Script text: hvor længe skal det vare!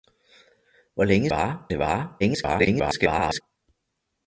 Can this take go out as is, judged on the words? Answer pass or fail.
fail